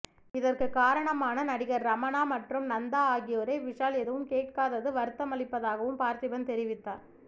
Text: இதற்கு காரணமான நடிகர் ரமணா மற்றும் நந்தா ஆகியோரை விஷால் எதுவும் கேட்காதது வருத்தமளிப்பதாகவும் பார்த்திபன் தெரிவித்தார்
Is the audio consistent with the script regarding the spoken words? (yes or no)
yes